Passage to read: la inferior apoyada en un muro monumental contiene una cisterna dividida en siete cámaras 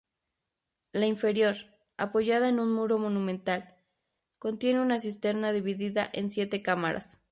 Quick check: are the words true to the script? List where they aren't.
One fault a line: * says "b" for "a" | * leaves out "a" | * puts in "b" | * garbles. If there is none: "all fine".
all fine